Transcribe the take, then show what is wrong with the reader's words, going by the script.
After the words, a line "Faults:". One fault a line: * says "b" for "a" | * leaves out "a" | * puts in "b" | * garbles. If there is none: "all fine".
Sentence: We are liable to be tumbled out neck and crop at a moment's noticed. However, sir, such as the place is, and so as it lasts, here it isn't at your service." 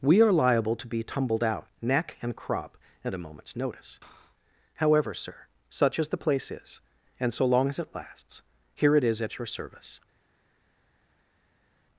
We are liable to be tumbled out neck and crop at a moment's notice. However, sir, such as the place is, and so long as it lasts, here it is at your service."
Faults:
* says "notice" for "noticed"
* puts in "long"
* says "is" for "isn't"